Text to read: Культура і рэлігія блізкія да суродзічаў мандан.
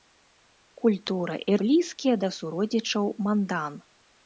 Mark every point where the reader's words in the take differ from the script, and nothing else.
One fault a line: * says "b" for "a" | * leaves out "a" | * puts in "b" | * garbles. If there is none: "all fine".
* leaves out "рэлігія"